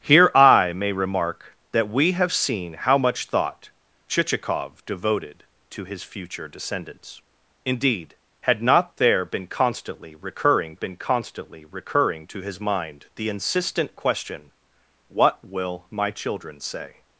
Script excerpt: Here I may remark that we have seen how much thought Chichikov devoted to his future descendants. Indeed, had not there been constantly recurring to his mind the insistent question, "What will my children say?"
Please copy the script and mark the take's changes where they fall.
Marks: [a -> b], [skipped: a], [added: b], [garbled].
Here I may remark that we have seen how much thought Chichikov devoted to his future descendants. Indeed, had not there been constantly recurring [added: been constantly recurring] to his mind the insistent question, "What will my children say?"